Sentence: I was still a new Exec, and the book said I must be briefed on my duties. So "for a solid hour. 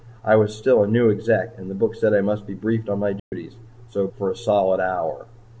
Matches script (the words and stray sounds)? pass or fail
fail